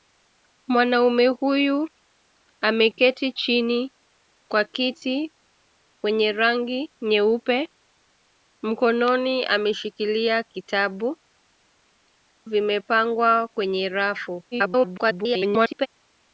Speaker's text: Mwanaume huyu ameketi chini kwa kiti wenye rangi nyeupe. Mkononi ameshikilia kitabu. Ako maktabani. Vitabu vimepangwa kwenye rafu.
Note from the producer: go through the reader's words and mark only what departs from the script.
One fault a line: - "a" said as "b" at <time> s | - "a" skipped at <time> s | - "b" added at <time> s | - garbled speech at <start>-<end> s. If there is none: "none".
- "Ako maktabani Vitabu" skipped at 11.2 s
- garbled speech at 14.5-15.9 s